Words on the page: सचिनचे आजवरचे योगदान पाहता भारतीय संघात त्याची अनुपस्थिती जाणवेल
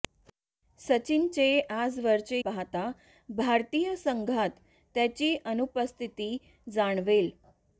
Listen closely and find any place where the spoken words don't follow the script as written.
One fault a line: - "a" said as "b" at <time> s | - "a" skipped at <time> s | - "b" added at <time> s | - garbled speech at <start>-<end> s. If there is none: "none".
- "योगदान" skipped at 2.4 s